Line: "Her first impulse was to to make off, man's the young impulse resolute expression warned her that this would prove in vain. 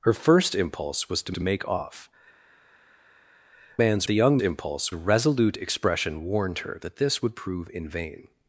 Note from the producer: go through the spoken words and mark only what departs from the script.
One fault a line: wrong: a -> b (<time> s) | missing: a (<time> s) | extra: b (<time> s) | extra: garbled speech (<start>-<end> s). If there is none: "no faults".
no faults